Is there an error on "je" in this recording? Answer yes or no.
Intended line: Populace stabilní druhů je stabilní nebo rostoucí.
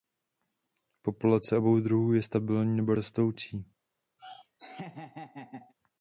no